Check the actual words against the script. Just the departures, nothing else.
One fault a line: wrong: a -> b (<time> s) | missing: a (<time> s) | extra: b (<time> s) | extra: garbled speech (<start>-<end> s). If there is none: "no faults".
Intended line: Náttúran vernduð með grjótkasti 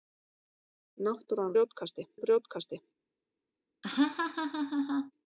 wrong: vernduð -> grjótkasti (1.5 s)